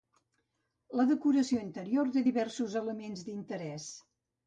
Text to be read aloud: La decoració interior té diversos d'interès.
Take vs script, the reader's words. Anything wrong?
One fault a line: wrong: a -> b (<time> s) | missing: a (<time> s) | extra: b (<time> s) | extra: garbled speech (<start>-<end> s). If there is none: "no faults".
extra: elements (2.9 s)